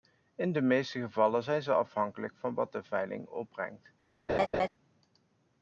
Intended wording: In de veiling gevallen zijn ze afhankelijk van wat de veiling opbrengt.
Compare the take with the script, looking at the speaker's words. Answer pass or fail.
fail